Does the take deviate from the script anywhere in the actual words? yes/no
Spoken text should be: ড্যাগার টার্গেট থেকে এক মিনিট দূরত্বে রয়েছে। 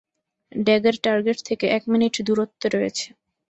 no